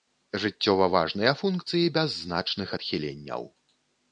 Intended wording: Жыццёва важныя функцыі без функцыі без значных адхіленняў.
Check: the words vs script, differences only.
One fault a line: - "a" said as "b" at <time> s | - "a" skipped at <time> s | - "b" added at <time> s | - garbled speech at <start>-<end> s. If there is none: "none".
- "функцыі без" skipped at 2.2 s